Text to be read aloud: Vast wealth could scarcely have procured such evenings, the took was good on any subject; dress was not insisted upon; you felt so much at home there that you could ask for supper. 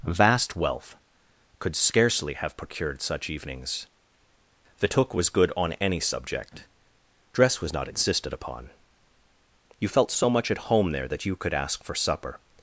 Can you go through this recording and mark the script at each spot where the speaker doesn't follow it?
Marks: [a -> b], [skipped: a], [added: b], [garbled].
Vast wealth could scarcely have procured such evenings, the took was good on any subject; dress was not insisted upon; you felt so much at home there that you could ask for supper.